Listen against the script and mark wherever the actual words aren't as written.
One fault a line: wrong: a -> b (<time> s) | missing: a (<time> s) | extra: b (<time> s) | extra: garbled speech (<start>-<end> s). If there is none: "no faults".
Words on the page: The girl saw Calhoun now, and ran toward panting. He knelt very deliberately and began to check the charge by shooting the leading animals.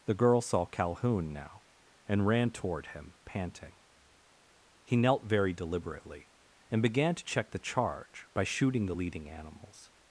extra: him (2.9 s)